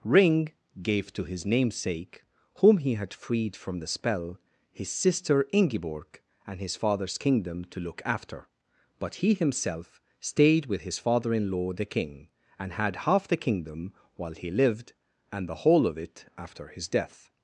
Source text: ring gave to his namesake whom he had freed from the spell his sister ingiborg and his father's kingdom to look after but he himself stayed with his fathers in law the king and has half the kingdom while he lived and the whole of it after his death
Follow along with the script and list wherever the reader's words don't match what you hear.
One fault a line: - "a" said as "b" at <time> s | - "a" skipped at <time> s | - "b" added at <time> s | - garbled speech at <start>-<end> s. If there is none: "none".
- "fathers" said as "father" at 11.0 s
- "has" said as "had" at 12.7 s